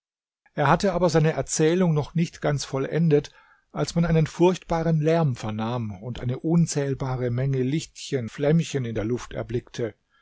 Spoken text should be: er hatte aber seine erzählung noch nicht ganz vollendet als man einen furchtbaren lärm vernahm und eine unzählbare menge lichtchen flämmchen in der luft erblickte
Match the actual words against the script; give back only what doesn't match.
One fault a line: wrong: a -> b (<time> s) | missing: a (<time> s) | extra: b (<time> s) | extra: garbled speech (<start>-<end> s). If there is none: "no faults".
no faults